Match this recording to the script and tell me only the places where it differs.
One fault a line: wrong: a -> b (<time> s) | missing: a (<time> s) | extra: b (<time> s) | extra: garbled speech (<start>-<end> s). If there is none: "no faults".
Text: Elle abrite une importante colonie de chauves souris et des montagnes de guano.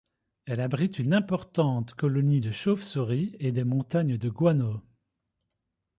no faults